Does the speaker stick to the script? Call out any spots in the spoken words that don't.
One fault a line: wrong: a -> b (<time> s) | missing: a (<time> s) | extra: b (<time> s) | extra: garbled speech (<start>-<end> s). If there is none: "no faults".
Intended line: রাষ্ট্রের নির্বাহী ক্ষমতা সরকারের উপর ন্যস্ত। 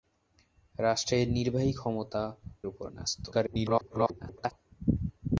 missing: সরকারের (2.2 s)
extra: garbled speech (3.3-4.5 s)